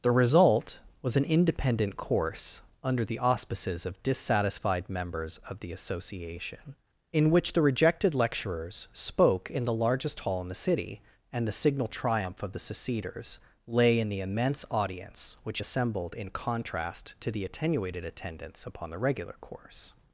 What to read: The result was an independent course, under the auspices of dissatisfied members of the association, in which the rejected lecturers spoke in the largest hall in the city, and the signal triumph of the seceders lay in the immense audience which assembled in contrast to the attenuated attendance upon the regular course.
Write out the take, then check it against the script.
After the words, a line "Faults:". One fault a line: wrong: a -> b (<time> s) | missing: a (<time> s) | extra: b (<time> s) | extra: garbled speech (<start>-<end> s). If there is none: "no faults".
The result was an independent course, under the auspices of dissatisfied members of the association, in which the rejected lecturers spoke in the largest hall in the city, and the signal triumph of the seceders lay in the immense audience which assembled in contrast to the attenuated attendance upon the regular course.
Faults:
no faults